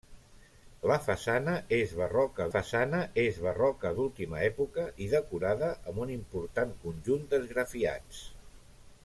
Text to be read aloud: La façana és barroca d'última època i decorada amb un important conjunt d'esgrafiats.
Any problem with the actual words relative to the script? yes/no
yes